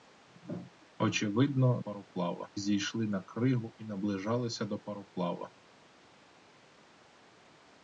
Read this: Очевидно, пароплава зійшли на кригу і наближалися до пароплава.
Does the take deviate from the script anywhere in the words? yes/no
no